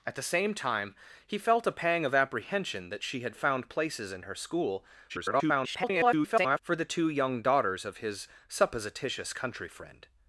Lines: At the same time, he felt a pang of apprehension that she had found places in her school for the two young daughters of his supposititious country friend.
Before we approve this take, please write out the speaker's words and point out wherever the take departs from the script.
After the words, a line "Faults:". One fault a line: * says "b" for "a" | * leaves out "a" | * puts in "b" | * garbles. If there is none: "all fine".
At the same time, he felt a pang of apprehension that she had found places in her school [garbled] for the two young daughters of his supposititious country friend.
Faults:
* garbles